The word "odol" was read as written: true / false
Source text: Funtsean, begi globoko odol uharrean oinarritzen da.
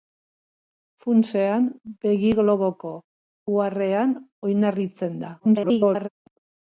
false